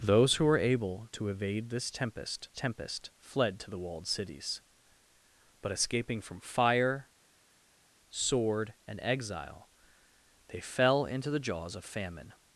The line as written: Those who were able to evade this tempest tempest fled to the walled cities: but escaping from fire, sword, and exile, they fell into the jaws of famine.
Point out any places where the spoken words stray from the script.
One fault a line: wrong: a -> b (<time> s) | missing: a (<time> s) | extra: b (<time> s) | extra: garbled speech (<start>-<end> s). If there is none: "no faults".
no faults